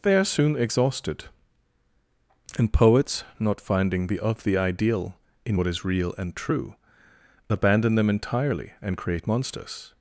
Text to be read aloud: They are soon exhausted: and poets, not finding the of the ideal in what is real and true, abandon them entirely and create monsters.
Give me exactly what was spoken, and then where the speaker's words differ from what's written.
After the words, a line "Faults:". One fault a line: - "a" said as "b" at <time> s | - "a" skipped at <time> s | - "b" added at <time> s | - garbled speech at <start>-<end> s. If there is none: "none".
They are soon exhausted: and poets, not finding the of the ideal in what is real and true, abandon them entirely and create monsters.
Faults:
none